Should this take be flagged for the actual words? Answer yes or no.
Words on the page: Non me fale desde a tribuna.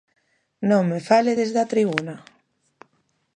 no